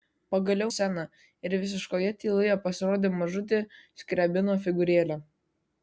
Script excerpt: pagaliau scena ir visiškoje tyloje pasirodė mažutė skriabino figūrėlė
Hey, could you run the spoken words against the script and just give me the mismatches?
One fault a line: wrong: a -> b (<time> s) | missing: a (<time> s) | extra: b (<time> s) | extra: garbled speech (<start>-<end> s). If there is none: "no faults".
no faults